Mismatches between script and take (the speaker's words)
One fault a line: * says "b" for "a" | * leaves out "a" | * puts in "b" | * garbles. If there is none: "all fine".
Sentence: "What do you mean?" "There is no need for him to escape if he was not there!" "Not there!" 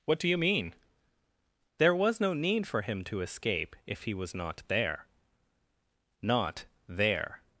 * says "was" for "is"